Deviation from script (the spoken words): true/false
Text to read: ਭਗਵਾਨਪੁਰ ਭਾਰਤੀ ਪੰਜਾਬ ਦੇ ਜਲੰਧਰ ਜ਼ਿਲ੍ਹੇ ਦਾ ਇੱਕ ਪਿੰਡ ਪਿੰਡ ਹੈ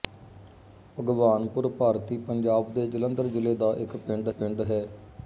false